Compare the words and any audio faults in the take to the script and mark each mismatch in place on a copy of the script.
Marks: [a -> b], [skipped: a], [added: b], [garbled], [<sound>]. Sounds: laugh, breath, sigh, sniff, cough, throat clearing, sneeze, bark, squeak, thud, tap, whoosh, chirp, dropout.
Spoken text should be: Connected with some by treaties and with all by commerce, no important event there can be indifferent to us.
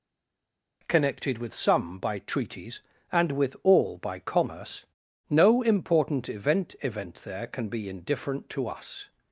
Connected with some by treaties and with all by commerce, no important event [added: event] there can be indifferent to us.